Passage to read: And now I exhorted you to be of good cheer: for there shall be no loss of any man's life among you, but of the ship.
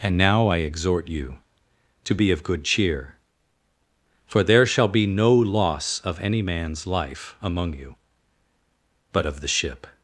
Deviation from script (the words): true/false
true